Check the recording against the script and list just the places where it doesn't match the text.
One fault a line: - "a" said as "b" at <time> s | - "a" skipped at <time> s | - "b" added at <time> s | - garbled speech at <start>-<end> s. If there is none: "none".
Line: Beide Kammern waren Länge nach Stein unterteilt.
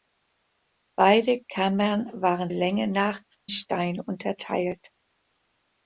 none